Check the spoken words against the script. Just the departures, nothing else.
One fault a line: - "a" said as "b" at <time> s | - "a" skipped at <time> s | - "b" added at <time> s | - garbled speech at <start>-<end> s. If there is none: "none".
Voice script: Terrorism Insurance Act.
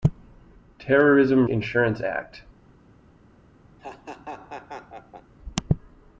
none